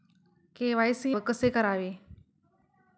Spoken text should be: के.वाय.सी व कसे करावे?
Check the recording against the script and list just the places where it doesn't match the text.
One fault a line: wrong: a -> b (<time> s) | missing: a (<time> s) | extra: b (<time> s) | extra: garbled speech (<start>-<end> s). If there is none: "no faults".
no faults